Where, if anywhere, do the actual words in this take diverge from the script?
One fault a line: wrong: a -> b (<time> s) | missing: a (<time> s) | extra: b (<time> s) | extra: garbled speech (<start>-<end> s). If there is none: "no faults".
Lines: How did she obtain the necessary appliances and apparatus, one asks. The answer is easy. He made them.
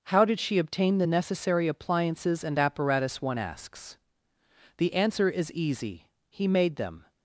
no faults